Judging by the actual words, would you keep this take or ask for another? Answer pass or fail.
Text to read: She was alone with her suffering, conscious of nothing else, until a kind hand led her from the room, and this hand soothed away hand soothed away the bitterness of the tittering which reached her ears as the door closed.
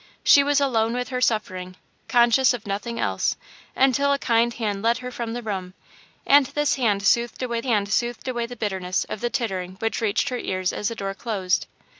pass